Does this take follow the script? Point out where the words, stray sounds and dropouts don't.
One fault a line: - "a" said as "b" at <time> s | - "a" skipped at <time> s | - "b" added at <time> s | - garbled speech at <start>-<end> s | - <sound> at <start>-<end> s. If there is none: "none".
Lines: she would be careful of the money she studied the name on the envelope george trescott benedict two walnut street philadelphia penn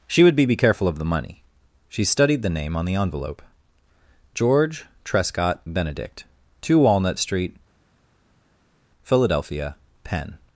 - "be" added at 0.5 s